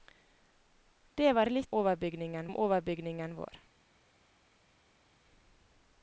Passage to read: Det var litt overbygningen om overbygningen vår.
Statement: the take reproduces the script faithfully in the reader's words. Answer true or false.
true